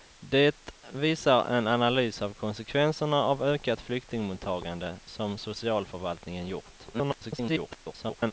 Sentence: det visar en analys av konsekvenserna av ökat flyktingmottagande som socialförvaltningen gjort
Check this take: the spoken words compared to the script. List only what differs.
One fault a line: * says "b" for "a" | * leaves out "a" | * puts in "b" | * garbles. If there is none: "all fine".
* garbles